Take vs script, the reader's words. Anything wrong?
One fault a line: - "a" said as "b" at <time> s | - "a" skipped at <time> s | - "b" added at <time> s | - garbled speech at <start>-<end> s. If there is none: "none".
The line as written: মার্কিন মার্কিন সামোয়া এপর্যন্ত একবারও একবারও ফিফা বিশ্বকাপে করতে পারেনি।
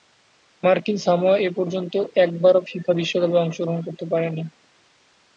- "মার্কিন" skipped at 1.0 s
- "একবারও" skipped at 2.6 s
- "অংশগ্রহণ" added at 3.4 s